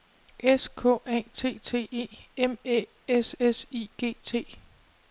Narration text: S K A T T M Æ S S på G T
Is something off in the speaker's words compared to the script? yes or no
yes